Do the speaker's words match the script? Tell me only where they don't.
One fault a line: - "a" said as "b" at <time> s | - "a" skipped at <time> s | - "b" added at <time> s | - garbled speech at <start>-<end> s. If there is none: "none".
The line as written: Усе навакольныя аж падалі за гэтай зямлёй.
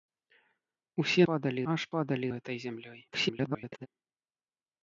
- "навакольныя" said as "падалі" at 1.3 s
- "за" skipped at 2.3 s
- garbled speech at 3.1-3.9 s